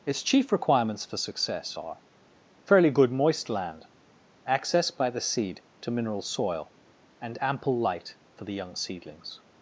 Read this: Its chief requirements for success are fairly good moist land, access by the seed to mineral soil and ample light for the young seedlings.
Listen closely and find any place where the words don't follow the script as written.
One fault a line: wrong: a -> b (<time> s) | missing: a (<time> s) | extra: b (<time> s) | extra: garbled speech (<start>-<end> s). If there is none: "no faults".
no faults